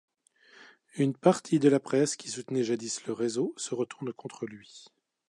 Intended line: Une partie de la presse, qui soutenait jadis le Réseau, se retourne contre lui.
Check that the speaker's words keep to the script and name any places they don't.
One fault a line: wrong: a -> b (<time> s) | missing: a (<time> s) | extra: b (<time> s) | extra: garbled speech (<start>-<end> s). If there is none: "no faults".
no faults